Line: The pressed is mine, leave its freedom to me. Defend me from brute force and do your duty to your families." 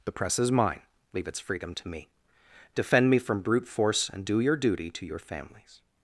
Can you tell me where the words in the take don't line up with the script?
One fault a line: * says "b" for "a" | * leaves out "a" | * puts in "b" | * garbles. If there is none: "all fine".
* says "press" for "pressed"